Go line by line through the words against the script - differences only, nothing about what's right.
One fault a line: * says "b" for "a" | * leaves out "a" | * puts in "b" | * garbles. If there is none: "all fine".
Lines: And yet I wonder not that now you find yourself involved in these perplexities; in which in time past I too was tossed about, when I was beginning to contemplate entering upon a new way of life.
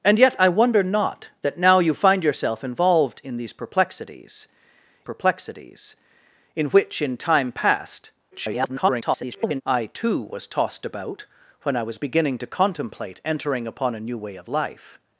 * puts in "perplexities"
* garbles